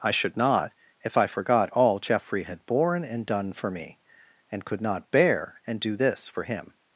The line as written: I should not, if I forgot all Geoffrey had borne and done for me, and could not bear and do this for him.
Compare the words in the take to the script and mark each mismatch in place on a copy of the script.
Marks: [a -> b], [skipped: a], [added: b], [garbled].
I should not, if I forgot all Geoffrey had borne and done for me, and could not bear and do this for him.